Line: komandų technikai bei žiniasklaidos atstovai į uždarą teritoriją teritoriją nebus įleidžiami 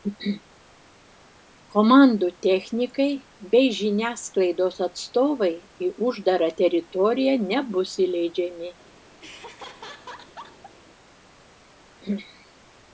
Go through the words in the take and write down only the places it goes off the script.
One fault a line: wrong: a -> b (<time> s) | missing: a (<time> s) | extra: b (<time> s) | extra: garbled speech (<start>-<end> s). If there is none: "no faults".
missing: teritoriją (7.3 s)